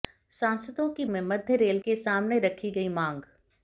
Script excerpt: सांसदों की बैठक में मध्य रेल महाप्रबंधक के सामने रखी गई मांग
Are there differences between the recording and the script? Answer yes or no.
yes